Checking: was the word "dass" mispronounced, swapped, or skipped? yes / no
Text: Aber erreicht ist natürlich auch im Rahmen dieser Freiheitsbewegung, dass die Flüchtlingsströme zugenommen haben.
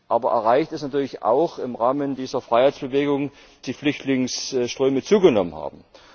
yes